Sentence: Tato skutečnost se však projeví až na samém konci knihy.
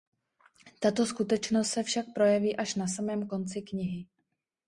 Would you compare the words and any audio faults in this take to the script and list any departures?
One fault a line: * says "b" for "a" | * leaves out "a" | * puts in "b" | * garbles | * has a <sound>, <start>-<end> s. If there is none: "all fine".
all fine